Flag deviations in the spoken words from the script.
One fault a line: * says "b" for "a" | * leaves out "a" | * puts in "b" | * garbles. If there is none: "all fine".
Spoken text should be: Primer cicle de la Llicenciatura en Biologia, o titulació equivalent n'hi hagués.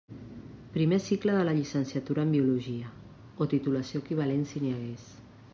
* puts in "si"